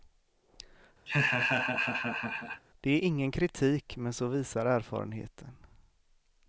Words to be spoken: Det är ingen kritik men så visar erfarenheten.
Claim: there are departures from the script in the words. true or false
false